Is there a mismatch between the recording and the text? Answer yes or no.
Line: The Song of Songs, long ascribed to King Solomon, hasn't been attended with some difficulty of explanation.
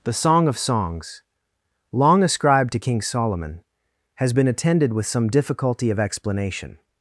yes